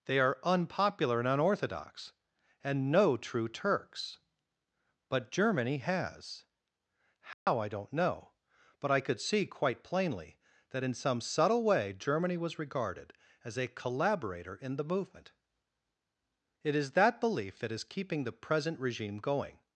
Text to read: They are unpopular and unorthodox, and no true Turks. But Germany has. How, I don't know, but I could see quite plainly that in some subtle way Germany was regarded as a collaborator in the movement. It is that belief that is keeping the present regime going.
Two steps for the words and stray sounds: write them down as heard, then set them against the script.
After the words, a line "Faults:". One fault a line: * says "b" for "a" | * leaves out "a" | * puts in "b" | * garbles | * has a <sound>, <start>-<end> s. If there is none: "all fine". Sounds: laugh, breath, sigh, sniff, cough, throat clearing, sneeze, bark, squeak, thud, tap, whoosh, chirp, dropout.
They are unpopular and unorthodox, and no true Turks. But Germany has. How, I don't know, but I could see quite plainly that in some subtle way Germany was regarded as a collaborator in the movement. It is that belief that is keeping the present regime going.
Faults:
* has a dropout, 7.3-7.5 s